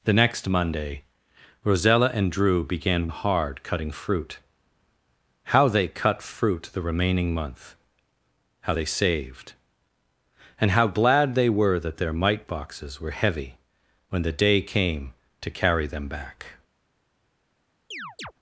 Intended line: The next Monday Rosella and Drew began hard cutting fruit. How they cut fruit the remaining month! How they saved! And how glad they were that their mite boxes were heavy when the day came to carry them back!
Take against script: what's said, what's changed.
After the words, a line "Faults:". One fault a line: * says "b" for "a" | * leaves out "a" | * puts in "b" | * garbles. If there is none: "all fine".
The next Monday Rosella and Drew began hard cutting fruit. How they cut fruit the remaining month! How they saved! And how glad they were that their mite boxes were heavy when the day came to carry them back!
Faults:
all fine